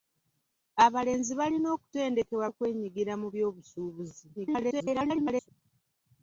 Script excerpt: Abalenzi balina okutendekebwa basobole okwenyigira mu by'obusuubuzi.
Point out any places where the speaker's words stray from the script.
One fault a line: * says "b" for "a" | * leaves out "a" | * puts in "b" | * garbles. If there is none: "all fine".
* leaves out "basobole"
* garbles